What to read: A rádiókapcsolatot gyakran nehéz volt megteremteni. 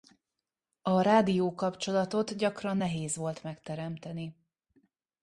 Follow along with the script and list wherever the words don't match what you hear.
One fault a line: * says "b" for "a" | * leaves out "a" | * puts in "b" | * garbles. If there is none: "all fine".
all fine